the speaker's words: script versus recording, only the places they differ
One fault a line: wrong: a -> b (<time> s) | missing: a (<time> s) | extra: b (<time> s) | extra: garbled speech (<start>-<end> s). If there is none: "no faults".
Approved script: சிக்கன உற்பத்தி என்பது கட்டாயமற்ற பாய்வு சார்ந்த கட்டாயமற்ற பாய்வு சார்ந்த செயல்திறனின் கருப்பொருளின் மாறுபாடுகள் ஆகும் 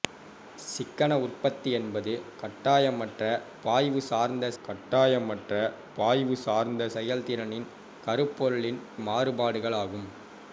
no faults